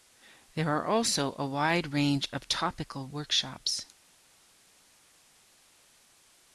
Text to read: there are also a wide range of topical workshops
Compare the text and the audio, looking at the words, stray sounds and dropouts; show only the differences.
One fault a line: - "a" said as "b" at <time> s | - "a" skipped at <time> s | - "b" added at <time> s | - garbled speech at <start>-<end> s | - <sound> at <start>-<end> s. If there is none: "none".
none